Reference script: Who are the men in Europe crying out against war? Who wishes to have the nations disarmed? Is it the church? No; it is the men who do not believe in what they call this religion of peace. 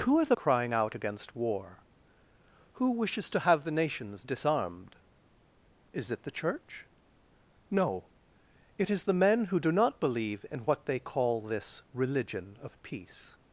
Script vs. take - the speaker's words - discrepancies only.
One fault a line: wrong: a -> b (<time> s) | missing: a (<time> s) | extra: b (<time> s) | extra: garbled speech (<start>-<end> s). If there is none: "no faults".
missing: men in Europe (0.3 s)